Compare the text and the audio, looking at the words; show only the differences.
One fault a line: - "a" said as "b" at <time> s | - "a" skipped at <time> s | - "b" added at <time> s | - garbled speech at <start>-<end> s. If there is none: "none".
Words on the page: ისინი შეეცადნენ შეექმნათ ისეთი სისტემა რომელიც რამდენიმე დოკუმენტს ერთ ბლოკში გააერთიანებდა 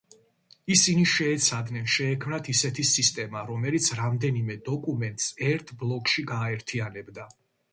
none